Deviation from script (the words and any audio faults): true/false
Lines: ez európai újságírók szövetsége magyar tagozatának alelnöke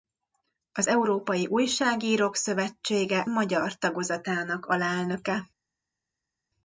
true